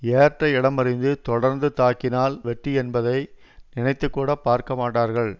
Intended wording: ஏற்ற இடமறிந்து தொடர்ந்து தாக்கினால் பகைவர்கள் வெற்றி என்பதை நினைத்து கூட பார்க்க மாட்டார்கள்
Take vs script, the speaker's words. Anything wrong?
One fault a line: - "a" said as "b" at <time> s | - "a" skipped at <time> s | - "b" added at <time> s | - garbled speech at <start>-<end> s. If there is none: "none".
- "பகைவர்கள்" skipped at 2.4 s